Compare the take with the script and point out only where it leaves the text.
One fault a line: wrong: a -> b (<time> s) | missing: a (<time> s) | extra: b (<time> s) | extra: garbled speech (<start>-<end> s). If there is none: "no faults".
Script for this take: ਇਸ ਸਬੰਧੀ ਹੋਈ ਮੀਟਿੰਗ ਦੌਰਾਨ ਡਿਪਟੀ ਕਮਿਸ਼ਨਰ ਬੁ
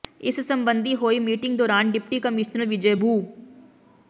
extra: ਵਿਜੈ (2.6 s)